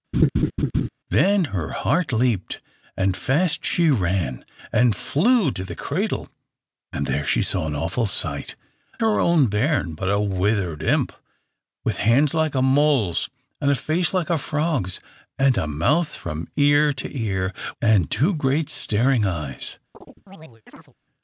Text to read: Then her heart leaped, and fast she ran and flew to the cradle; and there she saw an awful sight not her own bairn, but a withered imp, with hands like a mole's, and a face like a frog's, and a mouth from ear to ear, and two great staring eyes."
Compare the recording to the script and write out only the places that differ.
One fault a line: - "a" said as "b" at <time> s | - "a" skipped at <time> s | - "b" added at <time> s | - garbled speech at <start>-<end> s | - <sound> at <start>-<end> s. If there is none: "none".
- laugh at 0.1-0.9 s
- "not" skipped at 8.6 s
- chirp at 19.9-20.9 s